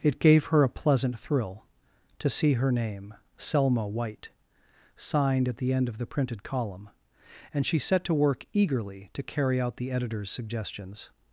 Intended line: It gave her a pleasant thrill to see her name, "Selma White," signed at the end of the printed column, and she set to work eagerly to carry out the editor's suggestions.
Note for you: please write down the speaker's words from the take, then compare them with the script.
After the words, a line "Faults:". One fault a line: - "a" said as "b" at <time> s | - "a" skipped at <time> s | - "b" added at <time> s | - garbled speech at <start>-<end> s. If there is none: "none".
It gave her a pleasant thrill to see her name, "Selma White," signed at the end of the printed column, and she set to work eagerly to carry out the editor's suggestions.
Faults:
none